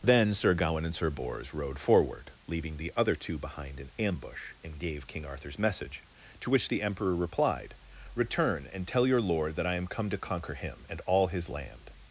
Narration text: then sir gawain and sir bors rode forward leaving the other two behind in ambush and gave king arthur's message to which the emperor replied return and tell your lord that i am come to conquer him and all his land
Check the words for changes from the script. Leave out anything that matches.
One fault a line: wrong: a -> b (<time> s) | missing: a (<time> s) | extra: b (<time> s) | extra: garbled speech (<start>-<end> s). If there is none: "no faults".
no faults